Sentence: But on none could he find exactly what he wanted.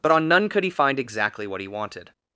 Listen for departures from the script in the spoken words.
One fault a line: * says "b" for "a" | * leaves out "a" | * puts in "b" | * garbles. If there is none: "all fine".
all fine